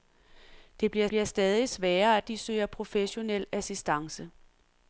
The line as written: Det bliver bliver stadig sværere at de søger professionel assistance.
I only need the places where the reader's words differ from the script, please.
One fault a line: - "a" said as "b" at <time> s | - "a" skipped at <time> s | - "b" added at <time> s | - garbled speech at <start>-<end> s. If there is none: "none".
none